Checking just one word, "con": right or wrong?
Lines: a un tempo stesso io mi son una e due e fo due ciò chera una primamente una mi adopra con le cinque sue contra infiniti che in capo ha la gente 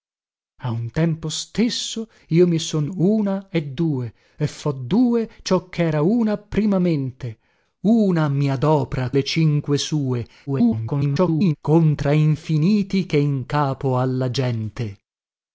wrong